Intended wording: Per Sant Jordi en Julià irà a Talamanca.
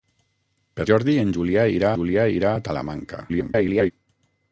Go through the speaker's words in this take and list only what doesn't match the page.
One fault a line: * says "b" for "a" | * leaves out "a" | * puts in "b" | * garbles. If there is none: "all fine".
* leaves out "Sant"
* puts in "Julià irà"
* garbles